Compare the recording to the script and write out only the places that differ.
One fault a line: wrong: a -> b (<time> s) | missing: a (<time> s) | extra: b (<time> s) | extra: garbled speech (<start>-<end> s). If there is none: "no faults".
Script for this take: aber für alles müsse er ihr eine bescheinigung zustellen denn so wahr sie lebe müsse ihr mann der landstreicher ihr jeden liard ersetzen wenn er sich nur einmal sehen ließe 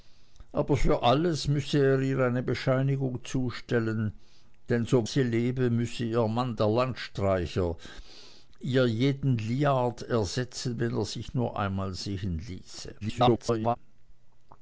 missing: wahr (5.0 s)
extra: garbled speech (13.0-13.8 s)